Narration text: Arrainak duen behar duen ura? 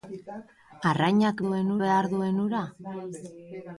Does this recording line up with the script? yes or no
yes